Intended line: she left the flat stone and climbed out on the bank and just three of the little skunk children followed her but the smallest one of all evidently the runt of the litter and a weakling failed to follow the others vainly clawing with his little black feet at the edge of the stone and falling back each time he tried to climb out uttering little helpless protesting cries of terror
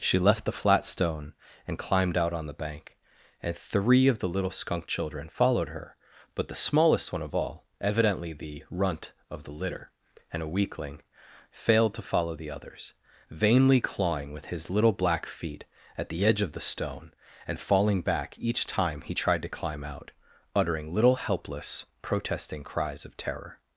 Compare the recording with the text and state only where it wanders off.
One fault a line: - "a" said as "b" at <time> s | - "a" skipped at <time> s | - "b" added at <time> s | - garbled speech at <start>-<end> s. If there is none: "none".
- "just" skipped at 3.5 s